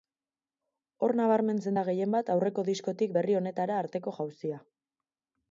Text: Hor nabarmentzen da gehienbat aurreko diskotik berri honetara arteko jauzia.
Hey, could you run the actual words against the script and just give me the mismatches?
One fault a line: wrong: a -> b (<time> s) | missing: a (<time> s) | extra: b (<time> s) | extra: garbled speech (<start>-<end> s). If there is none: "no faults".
no faults